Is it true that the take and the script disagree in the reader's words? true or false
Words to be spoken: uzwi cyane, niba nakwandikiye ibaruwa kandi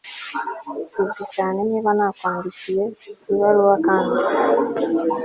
false